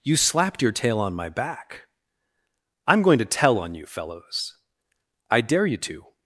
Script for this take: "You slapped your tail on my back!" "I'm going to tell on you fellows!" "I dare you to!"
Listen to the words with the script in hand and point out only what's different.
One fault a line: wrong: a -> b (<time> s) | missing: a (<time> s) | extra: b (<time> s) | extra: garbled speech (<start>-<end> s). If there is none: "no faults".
no faults